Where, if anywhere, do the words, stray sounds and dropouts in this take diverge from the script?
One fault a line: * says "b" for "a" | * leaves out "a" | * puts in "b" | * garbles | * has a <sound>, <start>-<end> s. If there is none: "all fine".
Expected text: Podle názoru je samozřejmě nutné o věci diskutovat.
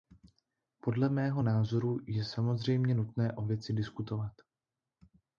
* puts in "mého"